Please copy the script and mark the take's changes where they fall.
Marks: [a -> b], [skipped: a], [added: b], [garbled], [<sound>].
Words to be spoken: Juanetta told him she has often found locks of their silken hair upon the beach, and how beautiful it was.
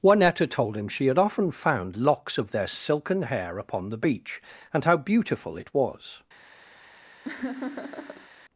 Juanetta told him she [has -> had] often found locks of their silken hair upon the beach, and how beautiful it was. [laugh]